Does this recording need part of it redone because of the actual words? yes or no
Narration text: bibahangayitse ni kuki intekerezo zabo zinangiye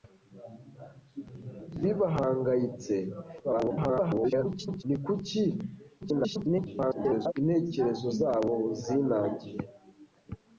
yes